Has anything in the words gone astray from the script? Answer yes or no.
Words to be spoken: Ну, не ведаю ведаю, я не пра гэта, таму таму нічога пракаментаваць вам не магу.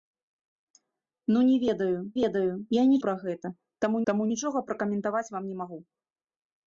no